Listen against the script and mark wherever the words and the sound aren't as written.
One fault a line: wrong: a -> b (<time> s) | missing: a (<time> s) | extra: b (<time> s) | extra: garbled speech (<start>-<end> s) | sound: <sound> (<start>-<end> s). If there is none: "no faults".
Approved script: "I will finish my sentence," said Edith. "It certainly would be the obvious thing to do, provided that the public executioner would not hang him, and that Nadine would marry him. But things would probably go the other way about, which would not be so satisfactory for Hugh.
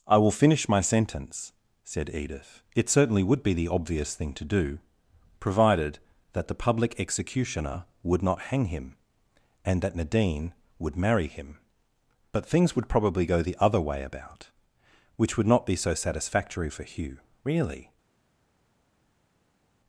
extra: Really (17.4 s)